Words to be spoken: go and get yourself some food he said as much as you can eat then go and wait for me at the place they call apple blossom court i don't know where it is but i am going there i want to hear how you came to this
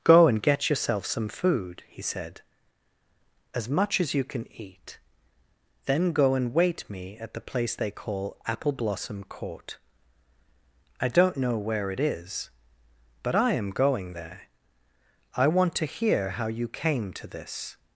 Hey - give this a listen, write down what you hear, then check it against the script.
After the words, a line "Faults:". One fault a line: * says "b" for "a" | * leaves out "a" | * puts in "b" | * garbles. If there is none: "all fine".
go and get yourself some food he said as much as you can eat then go and wait me at the place they call apple blossom court i don't know where it is but i am going there i want to hear how you came to this
Faults:
* leaves out "for"